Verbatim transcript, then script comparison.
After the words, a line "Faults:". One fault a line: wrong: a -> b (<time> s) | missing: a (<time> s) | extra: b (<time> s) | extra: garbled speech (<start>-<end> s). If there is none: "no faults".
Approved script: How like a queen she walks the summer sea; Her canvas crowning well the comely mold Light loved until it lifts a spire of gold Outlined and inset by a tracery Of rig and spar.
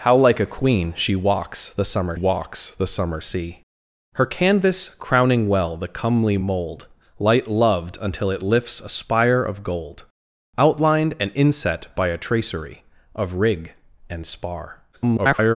How like a queen she walks the summer walks the summer sea; Her canvas crowning well the comely mold Light loved until it lifts a spire of gold Outlined and inset by a tracery Of rig and spar. [garbled]
Faults:
extra: walks the summer (2.1 s)
extra: garbled speech (14.9-15.6 s)